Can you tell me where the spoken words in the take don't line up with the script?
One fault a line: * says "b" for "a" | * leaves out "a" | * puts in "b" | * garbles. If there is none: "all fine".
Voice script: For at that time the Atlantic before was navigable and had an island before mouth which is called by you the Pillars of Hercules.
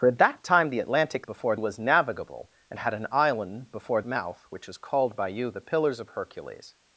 all fine